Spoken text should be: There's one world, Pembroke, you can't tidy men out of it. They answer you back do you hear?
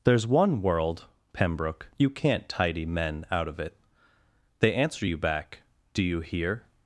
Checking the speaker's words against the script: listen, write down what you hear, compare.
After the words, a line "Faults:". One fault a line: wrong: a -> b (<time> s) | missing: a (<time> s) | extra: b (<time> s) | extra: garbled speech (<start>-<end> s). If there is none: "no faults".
There's one world, Pembroke, you can't tidy men out of it. They answer you back do you hear?
Faults:
no faults